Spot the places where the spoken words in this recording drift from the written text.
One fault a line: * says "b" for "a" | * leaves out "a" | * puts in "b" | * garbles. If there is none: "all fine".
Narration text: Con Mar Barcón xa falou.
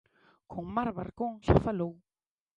all fine